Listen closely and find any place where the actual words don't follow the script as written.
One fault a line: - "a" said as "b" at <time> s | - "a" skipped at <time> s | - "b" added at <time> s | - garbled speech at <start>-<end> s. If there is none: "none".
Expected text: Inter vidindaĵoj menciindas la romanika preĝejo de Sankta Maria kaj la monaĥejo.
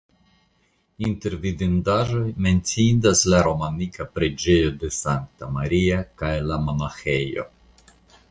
none